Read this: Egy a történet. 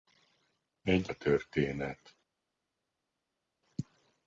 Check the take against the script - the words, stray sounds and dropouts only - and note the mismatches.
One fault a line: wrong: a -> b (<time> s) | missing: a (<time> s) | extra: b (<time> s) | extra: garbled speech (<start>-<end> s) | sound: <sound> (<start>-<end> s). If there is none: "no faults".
no faults